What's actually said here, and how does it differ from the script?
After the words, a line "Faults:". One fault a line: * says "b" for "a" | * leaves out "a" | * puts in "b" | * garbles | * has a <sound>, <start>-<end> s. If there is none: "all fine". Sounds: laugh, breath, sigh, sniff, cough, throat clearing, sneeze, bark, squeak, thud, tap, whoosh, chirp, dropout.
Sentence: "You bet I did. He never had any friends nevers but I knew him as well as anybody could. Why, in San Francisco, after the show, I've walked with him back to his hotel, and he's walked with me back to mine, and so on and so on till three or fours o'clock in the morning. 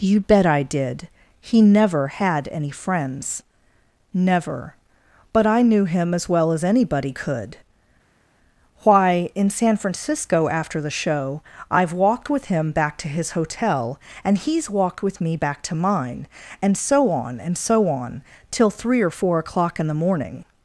"You bet I did. He never had any friends never but I knew him as well as anybody could. Why, in San Francisco, after the show, I've walked with him back to his hotel, and he's walked with me back to mine, and so on and so on till three or four o'clock in the morning.
Faults:
* says "never" for "nevers"
* says "four" for "fours"